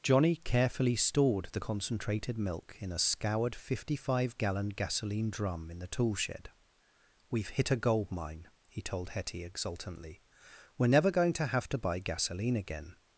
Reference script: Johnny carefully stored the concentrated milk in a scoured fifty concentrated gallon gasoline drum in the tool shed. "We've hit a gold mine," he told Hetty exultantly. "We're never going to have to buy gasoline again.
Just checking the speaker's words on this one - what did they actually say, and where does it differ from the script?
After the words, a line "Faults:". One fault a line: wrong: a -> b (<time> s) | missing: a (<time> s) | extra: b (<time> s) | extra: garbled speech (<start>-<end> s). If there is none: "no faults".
Johnny carefully stored the concentrated milk in a scoured fifty five gallon gasoline drum in the tool shed. "We've hit a gold mine," he told Hetty exultantly. "We're never going to have to buy gasoline again.
Faults:
wrong: concentrated -> five (4.0 s)